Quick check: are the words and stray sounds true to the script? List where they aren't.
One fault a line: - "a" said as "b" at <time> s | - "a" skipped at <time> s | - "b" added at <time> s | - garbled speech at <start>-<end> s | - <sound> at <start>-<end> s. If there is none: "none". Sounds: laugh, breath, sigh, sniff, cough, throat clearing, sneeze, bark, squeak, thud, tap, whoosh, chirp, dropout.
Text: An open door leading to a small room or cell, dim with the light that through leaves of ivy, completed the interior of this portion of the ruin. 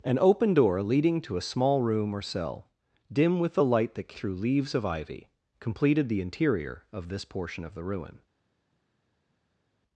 none